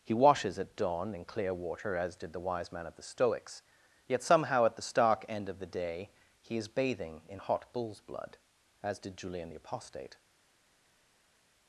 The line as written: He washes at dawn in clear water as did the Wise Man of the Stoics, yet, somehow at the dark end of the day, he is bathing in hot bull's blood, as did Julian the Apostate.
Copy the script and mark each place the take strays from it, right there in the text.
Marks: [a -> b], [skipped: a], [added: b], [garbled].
He washes at dawn in clear water as did the Wise Man of the Stoics, yet, somehow at the [dark -> stark] end of the day, he is bathing in hot bull's blood, as did Julian the Apostate.